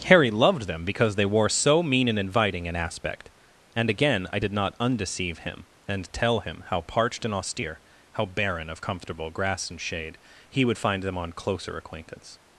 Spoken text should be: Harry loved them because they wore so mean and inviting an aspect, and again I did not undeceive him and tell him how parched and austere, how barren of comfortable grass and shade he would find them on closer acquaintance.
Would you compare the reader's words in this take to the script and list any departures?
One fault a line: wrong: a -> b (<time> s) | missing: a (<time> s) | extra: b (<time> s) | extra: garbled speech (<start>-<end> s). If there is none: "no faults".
no faults